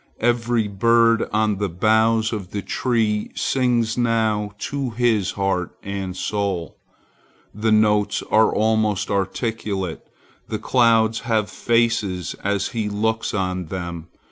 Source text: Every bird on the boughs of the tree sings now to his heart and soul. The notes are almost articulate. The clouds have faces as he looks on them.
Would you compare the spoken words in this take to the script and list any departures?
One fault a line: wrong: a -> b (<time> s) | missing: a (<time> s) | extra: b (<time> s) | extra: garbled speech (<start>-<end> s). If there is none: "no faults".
no faults